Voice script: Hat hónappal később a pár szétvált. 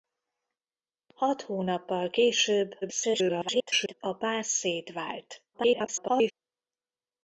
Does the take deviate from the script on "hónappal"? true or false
false